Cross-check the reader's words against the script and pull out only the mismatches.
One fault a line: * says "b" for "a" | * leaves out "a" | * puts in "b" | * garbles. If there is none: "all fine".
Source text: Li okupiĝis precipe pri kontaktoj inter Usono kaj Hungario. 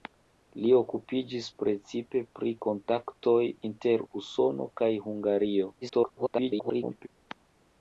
* garbles